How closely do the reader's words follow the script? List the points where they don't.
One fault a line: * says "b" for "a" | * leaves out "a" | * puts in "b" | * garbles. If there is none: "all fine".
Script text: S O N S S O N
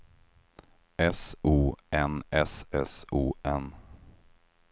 all fine